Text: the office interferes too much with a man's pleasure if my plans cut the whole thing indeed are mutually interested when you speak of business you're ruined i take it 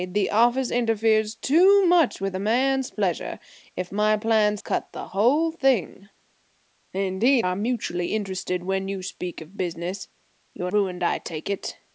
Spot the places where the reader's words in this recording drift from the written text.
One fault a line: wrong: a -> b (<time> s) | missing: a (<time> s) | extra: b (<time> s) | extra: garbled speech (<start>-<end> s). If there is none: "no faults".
no faults